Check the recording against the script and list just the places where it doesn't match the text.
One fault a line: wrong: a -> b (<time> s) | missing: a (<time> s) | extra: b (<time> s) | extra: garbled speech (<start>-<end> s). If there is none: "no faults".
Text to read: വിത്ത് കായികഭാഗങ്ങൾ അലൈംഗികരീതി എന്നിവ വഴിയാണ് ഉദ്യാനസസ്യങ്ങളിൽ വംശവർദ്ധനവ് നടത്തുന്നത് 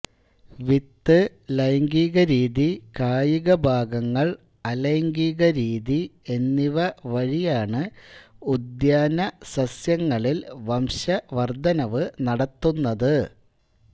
extra: ലൈംഗികരീതി (1.5 s)